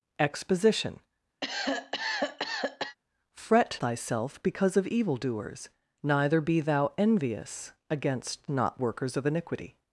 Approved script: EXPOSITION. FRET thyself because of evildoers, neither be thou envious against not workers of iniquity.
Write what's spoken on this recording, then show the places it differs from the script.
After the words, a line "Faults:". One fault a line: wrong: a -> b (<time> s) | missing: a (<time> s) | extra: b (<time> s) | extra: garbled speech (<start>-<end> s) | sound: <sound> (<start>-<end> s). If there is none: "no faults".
EXPOSITION. FRET thyself because of evildoers, neither be thou envious against not workers of iniquity.
Faults:
sound: cough (1.4-3.0 s)